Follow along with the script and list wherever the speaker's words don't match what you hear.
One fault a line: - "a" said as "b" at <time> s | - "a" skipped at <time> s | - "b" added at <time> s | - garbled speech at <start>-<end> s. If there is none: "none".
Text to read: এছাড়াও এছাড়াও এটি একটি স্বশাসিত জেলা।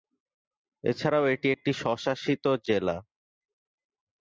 - "এছাড়াও" skipped at 1.2 s